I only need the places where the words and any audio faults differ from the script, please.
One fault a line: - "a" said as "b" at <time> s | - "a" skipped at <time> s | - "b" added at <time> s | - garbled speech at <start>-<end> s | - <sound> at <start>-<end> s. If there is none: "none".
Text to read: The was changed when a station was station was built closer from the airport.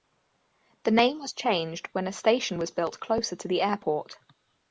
- "name" added at 0.9 s
- "station was" skipped at 2.7 s
- "from" said as "to" at 3.4 s